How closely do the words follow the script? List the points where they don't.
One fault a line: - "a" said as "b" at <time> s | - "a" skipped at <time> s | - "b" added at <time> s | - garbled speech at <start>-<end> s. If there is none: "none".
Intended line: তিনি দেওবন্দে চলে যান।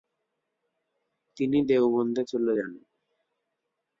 none